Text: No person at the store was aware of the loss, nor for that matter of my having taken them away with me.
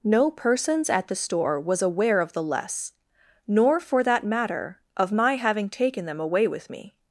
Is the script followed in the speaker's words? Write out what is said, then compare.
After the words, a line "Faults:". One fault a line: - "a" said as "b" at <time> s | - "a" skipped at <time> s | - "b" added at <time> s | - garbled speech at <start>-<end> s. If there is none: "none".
No persons at the store was aware of the less, nor for that matter of my having taken them away with me.
Faults:
- "person" said as "persons" at 0.3 s
- "loss" said as "less" at 2.4 s